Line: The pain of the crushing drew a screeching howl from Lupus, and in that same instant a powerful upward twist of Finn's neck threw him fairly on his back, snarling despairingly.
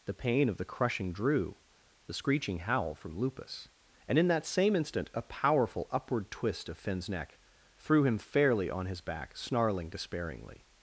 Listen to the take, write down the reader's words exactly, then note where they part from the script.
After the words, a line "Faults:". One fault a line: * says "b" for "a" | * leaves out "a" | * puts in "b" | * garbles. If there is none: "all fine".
The pain of the crushing drew the screeching howl from Lupus, and in that same instant a powerful upward twist of Finn's neck threw him fairly on his back, snarling despairingly.
Faults:
* says "the" for "a"